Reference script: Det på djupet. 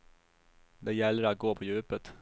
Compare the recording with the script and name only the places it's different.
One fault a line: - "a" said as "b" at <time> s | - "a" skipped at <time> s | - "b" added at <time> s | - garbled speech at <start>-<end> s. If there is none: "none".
- "gäller att gå" added at 0.9 s